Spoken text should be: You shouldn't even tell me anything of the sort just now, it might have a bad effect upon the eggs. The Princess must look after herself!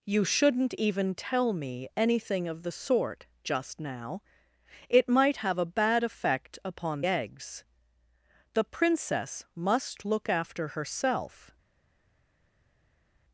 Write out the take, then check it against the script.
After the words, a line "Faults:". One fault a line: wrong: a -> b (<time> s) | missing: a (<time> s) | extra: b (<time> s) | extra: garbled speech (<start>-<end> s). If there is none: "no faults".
You shouldn't even tell me anything of the sort just now, it might have a bad effect upon eggs. The Princess must look after herself!
Faults:
missing: the (7.0 s)